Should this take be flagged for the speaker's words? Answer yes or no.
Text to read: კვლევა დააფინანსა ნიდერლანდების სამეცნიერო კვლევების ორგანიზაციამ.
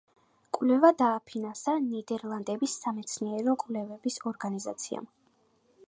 no